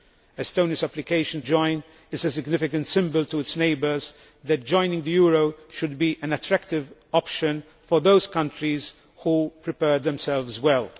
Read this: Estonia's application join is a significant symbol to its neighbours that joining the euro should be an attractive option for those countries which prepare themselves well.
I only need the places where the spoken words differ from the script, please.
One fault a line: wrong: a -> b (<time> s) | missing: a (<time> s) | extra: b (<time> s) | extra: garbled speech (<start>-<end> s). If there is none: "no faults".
no faults